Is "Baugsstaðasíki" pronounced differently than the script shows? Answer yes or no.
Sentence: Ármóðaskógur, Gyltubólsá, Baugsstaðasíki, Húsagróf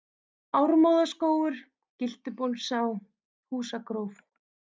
yes